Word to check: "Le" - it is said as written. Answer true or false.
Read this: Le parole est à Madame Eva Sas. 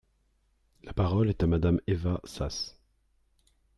false